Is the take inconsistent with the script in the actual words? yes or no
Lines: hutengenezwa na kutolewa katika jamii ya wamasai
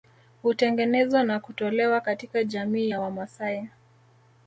no